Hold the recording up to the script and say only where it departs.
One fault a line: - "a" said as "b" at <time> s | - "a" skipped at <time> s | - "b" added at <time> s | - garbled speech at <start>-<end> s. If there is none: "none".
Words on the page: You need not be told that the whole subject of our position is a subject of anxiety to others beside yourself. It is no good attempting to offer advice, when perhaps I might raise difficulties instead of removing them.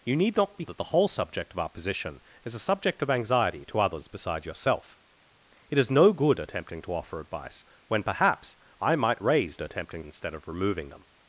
- "told" skipped at 0.7 s
- "difficulties" said as "attempting" at 9.6 s